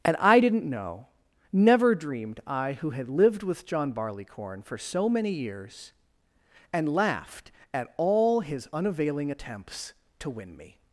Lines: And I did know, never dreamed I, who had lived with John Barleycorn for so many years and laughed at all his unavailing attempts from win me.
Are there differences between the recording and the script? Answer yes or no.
yes